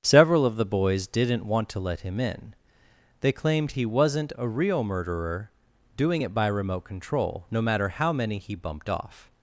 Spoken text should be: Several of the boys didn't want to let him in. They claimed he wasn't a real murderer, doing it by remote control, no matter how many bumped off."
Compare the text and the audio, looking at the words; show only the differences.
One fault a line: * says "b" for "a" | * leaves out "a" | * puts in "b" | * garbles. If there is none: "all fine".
* puts in "he"